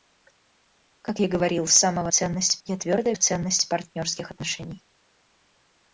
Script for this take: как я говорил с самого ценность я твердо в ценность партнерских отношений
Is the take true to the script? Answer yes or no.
yes